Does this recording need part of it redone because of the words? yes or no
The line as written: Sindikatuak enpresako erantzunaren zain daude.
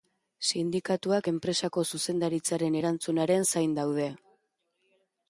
yes